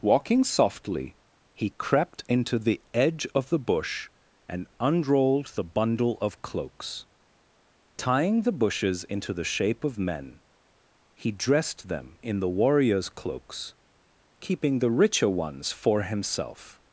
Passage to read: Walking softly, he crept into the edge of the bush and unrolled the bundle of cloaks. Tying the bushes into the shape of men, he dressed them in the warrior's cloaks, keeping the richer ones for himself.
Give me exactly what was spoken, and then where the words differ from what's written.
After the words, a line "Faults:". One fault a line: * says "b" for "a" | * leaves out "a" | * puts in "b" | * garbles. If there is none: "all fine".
Walking softly, he crept into the edge of the bush and unrolled the bundle of cloaks. Tying the bushes into the shape of men, he dressed them in the warrior's cloaks, keeping the richer ones for himself.
Faults:
all fine